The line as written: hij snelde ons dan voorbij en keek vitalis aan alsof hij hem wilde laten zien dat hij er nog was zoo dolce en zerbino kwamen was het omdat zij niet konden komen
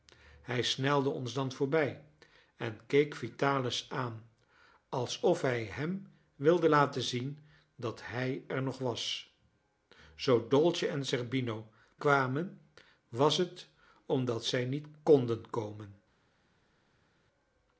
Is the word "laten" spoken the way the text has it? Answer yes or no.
yes